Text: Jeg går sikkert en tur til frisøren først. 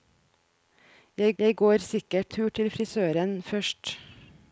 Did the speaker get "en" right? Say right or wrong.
wrong